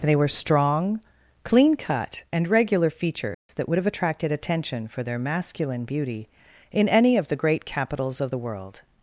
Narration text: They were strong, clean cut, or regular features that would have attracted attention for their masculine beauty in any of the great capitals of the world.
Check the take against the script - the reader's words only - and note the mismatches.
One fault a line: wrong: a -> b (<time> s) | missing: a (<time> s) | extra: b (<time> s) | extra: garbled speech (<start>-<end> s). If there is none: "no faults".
wrong: or -> and (2.3 s)